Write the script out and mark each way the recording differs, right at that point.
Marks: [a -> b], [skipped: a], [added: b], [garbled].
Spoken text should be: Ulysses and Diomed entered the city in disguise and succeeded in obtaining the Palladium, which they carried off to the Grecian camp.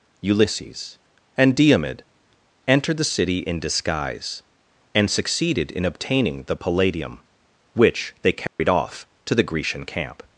Ulysses and Diomed entered the city in disguise and succeeded in obtaining the Palladium, which they carried off to the Grecian camp.